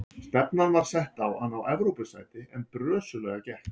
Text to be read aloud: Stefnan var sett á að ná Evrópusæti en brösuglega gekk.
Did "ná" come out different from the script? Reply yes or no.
no